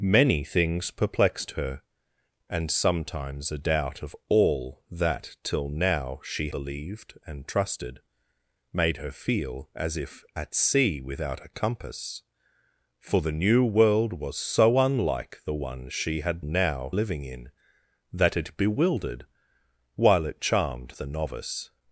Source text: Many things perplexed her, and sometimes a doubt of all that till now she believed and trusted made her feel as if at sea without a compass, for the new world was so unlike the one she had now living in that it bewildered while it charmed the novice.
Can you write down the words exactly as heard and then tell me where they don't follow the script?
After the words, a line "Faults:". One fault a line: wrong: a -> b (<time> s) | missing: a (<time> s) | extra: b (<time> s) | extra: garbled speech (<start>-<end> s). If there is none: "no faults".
Many things perplexed her, and sometimes a doubt of all that till now she believed and trusted made her feel as if at sea without a compass, for the new world was so unlike the one she had now living in that it bewildered while it charmed the novice.
Faults:
no faults